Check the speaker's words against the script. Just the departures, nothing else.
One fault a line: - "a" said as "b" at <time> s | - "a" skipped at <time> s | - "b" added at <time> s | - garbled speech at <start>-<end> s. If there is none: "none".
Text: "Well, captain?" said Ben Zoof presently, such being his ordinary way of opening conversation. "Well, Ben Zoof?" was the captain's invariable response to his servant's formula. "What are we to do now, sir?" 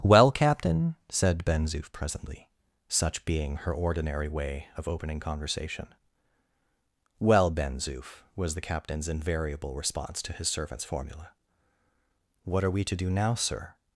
- "his" said as "her" at 3.6 s